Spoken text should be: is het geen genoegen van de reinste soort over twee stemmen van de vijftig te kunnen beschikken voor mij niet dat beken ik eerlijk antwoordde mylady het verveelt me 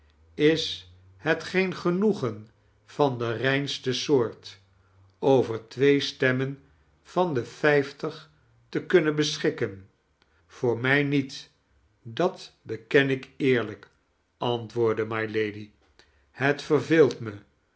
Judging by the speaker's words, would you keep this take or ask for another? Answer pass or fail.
pass